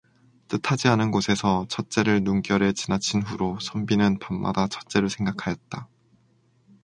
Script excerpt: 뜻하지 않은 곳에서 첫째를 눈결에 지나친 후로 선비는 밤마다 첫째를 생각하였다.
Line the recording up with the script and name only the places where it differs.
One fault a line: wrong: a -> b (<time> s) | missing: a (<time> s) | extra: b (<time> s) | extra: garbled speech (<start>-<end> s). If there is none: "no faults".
no faults